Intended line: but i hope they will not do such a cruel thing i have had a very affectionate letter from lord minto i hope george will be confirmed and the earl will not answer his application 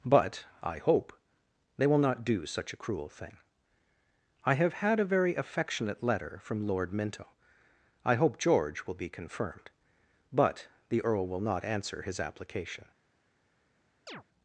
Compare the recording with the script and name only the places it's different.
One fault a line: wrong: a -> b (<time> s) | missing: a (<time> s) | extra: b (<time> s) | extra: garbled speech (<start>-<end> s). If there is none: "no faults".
wrong: and -> but (10.3 s)